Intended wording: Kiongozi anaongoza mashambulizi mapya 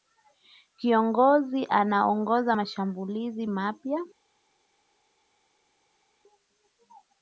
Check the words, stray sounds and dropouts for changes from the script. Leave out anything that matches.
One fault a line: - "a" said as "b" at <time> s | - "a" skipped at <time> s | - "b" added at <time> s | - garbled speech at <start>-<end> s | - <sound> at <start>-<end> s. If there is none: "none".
none